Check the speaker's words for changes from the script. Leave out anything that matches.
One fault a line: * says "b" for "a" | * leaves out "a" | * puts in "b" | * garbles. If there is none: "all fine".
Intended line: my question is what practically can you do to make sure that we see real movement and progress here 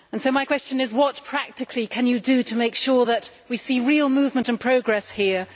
all fine